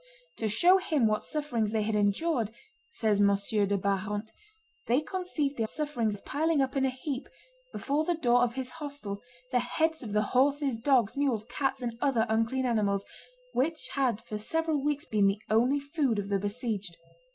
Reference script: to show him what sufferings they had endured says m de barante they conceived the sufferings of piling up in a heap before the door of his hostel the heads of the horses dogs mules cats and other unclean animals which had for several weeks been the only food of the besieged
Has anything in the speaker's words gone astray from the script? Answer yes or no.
no